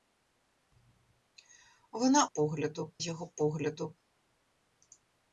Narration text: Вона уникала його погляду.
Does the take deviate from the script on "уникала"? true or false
true